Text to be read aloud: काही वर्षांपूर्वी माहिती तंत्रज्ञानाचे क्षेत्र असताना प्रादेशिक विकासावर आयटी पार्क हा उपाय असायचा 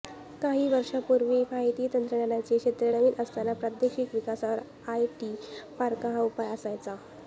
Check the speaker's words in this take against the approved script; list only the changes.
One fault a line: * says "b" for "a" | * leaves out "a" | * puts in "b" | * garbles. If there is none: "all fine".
* puts in "नवीन"